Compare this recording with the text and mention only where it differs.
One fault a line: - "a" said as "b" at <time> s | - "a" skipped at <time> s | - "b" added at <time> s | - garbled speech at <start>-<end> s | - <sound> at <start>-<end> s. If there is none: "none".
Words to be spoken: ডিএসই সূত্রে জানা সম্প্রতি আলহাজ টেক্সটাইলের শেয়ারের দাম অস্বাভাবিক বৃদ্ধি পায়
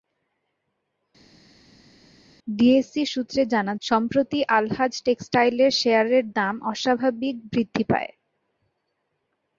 none